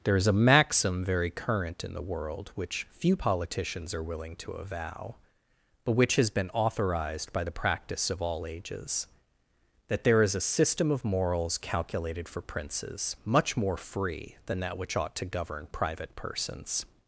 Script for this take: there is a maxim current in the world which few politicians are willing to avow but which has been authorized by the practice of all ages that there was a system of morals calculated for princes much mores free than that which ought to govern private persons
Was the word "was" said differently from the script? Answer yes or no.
yes